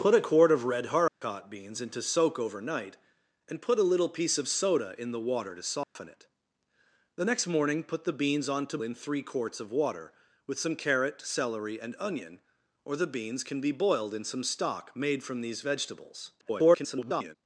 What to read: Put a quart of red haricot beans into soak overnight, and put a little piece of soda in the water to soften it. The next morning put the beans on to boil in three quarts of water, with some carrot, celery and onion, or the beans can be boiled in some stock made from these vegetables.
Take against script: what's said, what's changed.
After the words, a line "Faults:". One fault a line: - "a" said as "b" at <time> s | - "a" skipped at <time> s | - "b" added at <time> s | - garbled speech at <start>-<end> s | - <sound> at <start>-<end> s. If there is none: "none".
Put a quart of red haricot beans into soak overnight, and put a little piece of soda in the water to soften it. The next morning put the beans on to in three quarts of water, with some carrot, celery and onion, or the beans can be boiled in some stock made from these vegetables. [garbled]
Faults:
- dropout at 1.1-1.2 s
- dropout at 5.8-6.0 s
- "boil" skipped at 8.8 s
- garbled speech at 16.4-17.4 s